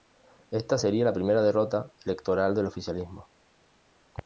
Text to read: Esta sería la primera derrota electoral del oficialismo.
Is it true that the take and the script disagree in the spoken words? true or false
false